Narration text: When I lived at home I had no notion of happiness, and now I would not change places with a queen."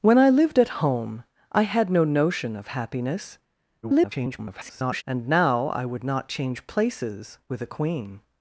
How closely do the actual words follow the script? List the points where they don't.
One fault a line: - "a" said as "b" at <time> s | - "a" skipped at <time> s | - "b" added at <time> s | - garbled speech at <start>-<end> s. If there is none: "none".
- garbled speech at 3.8-5.0 s